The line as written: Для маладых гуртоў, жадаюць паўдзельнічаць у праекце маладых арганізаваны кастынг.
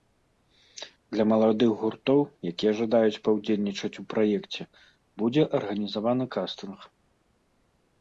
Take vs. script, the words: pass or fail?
fail